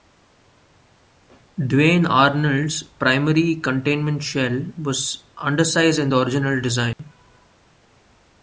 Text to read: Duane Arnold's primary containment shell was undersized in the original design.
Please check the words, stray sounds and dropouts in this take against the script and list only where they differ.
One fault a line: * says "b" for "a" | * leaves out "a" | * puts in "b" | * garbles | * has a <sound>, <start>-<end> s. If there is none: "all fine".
* has a dropout, 6.9-7.0 s